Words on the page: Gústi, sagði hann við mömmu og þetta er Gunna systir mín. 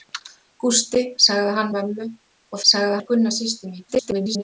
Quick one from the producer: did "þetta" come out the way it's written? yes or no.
no